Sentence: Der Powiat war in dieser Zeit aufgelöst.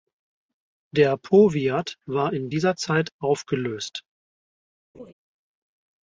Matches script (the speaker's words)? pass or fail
pass